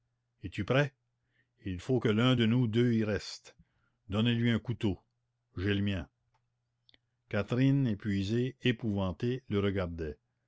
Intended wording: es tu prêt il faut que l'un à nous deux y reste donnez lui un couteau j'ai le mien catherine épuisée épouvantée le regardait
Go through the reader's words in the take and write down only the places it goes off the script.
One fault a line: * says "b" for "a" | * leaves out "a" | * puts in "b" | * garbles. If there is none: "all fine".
* says "de" for "à"